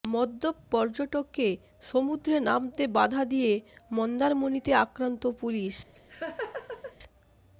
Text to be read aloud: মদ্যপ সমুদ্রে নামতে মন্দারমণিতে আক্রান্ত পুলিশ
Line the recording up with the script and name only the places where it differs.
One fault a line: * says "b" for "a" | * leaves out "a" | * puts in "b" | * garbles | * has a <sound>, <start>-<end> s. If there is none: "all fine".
* puts in "পর্যটককে"
* puts in "বাধা দিয়ে"
* has a laugh, 5.9-7.0 s